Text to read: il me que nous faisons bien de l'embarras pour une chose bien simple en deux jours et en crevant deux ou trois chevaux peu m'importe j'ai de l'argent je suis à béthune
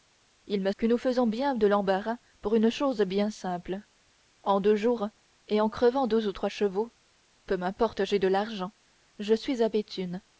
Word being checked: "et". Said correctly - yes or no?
yes